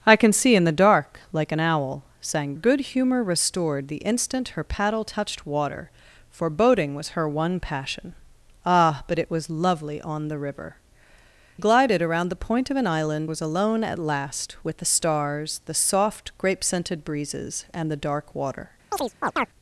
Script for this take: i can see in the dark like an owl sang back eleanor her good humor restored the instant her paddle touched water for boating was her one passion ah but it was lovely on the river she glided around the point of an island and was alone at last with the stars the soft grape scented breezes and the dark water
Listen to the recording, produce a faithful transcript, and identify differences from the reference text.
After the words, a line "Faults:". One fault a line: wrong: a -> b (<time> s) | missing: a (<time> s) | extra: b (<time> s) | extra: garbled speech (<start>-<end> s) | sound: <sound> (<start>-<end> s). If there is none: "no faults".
i can see in the dark like an owl sang good humor restored the instant her paddle touched water for boating was her one passion ah but it was lovely on the river glided around the point of an island was alone at last with the stars the soft grape scented breezes and the dark water
Faults:
missing: back eleanor her (2.5 s)
missing: she (10.8 s)
missing: and (13.3 s)
sound: chirp (18.9-19.5 s)